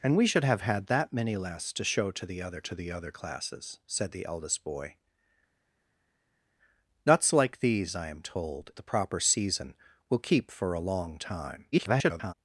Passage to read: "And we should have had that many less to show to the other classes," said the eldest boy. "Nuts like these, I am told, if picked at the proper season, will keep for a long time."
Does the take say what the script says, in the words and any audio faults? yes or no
no